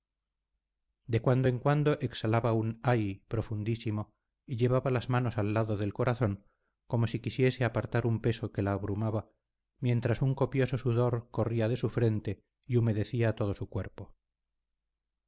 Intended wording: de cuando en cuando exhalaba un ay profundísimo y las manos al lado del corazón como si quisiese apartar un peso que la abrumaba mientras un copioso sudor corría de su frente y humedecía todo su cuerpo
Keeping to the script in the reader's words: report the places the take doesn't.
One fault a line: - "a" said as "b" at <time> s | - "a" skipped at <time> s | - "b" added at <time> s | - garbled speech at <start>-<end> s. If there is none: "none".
- "llevaba" added at 4.5 s